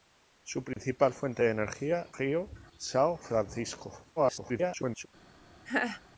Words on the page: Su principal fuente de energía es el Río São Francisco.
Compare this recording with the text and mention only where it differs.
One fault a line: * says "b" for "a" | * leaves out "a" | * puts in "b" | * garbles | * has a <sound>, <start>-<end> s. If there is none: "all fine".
* has a dropout, 0.7-0.8 s
* leaves out "es el"
* garbles
* has a laugh, 5.7-6.0 s